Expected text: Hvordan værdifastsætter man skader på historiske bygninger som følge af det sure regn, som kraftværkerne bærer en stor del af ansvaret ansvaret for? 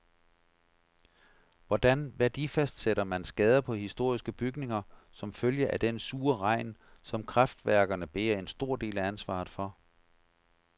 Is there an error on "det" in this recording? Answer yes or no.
yes